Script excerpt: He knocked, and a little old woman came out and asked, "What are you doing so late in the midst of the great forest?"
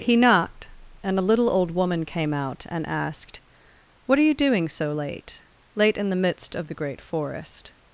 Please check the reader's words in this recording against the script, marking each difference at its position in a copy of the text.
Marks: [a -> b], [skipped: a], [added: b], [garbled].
He knocked, and a little old woman came out and asked, "What are you doing so late [added: late] in the midst of the great forest?"